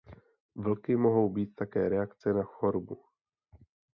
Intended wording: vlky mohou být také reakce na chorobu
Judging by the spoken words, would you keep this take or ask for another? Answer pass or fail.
pass